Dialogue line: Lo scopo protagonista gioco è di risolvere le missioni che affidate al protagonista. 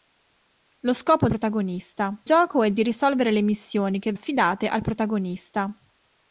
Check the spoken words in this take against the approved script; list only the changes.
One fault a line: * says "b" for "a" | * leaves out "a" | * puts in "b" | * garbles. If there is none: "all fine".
all fine